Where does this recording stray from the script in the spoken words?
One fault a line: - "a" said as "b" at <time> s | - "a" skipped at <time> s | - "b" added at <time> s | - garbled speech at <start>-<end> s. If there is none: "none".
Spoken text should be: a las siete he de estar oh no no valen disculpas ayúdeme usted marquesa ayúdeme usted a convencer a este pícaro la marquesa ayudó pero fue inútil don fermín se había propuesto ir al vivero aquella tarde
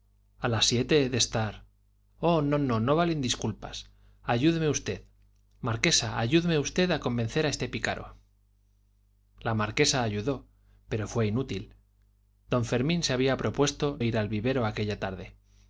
none